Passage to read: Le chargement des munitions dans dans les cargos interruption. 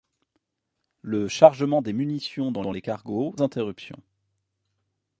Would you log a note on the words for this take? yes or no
no